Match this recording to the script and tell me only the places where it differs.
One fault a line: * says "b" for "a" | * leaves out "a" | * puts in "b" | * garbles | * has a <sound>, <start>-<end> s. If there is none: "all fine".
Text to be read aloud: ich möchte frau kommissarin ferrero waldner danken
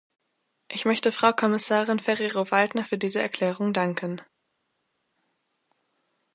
* puts in "für diese erklärung"